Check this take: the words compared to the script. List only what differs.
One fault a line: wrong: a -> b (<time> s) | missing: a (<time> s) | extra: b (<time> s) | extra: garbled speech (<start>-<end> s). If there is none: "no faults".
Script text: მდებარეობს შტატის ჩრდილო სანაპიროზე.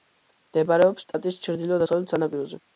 extra: დასავლეთ (1.8 s)